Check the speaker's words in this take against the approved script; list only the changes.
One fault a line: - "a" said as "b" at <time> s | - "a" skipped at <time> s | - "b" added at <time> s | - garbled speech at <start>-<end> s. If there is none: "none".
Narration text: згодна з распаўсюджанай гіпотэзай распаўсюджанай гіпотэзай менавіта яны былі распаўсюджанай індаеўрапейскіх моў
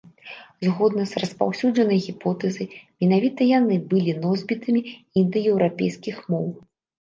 - "распаўсюджанай гіпотэзай" skipped at 2.7 s
- "распаўсюджанай" said as "носьбітамі" at 4.2 s